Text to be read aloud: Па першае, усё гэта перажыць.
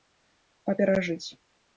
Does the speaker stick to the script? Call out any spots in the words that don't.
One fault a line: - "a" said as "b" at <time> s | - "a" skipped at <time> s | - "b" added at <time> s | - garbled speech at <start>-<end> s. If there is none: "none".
- "першае усё гэта" skipped at 0.7 s